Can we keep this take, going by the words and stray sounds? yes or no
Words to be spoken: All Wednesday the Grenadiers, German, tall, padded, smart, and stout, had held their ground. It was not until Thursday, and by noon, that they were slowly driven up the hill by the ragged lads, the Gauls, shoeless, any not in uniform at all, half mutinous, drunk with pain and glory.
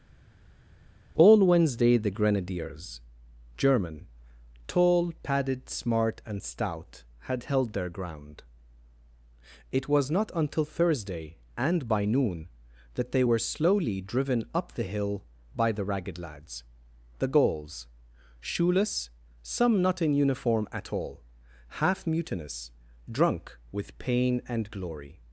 no